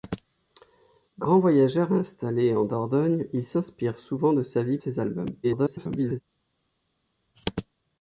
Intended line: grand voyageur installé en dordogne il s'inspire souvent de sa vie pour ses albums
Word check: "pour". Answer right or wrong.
wrong